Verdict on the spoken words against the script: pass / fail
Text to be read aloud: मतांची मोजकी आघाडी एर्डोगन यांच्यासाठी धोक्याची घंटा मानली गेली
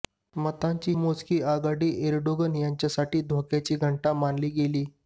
pass